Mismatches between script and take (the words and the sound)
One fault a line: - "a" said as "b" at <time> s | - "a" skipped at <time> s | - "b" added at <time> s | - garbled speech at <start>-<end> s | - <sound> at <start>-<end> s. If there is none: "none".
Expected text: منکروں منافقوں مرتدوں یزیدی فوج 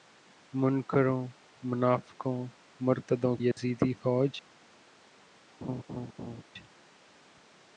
- dropout at 3.5-3.6 s
- laugh at 5.6-6.4 s